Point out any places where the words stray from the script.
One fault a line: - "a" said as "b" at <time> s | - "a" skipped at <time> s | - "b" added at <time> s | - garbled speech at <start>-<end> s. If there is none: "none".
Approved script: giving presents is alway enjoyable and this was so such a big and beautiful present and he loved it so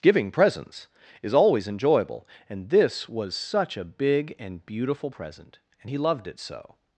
- "alway" said as "always" at 1.3 s
- "so" skipped at 3.3 s